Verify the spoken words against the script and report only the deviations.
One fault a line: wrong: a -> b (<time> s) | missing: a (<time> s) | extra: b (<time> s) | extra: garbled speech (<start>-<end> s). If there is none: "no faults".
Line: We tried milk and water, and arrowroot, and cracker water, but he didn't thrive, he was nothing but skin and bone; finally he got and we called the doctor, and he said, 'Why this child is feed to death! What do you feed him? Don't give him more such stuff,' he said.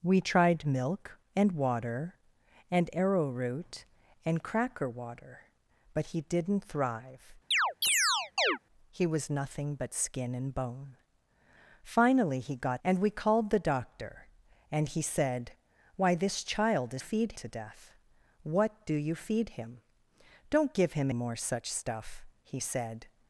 no faults